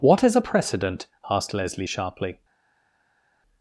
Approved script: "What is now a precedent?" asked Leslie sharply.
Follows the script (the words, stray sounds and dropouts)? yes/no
no